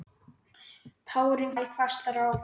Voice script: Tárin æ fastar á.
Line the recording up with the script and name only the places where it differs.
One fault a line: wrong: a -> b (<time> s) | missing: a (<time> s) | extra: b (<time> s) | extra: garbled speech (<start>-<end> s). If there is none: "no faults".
no faults